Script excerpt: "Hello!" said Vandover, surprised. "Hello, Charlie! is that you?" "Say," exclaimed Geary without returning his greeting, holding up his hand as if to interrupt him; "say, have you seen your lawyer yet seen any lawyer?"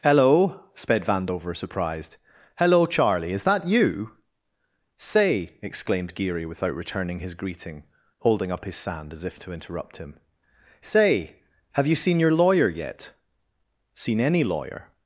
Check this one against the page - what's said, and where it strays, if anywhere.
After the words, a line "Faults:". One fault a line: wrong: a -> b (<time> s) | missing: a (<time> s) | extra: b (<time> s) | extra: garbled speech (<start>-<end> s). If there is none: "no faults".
"Hello!" sped Vandover, surprised. "Hello, Charlie! is that you?" "Say," exclaimed Geary without returning his greeting, holding up his sand as if to interrupt him; "say, have you seen your lawyer yet seen any lawyer?"
Faults:
wrong: said -> sped (0.7 s)
wrong: hand -> sand (8.8 s)